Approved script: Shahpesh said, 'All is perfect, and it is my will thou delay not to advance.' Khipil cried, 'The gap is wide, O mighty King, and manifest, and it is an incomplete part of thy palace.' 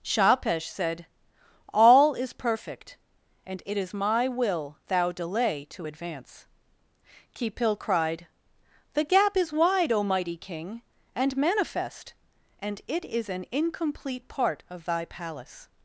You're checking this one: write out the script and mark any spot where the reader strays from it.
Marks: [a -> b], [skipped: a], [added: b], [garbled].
Shahpesh said, 'All is perfect, and it is my will thou delay [skipped: not] to advance.' Khipil cried, 'The gap is wide, O mighty King, and manifest, and it is an incomplete part of thy palace.'